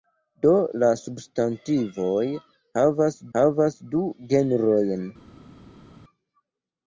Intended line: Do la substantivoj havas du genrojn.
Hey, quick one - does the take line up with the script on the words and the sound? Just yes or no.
no